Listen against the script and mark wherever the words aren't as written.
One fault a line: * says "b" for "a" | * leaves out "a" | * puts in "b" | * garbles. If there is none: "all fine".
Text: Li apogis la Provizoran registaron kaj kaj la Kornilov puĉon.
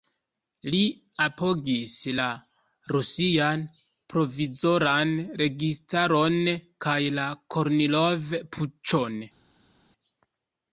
* puts in "Rusian"
* leaves out "kaj"